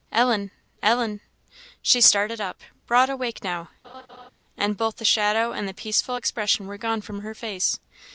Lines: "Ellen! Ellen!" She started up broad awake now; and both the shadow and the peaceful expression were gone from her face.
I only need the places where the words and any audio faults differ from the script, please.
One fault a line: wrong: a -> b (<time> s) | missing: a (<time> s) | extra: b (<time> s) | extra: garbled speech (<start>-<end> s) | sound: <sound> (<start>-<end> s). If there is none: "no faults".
sound: laugh (3.8-4.3 s)